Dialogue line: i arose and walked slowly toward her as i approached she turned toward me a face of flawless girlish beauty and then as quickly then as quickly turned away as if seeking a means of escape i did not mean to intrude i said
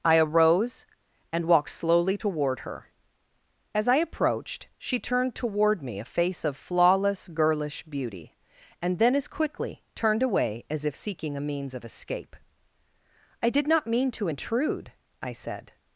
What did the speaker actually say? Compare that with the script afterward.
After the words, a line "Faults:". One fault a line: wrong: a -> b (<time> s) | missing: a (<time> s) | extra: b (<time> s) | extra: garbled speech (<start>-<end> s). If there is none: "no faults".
i arose and walked slowly toward her as i approached she turned toward me a face of flawless girlish beauty and then as quickly turned away as if seeking a means of escape i did not mean to intrude i said
Faults:
missing: then as quickly (9.8 s)